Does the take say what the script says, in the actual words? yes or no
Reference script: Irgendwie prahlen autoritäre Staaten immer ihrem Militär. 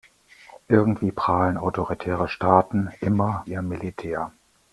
yes